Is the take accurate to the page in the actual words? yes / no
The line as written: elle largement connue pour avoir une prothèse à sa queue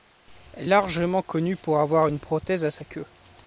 yes